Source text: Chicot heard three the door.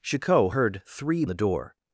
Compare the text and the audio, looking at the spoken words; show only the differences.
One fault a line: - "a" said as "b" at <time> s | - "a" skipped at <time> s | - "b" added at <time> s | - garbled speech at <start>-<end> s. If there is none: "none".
none